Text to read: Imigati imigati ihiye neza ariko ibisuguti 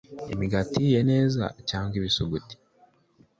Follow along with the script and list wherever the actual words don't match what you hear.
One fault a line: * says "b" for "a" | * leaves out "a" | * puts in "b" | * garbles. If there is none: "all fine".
* leaves out "imigati"
* says "cyangwa" for "ariko"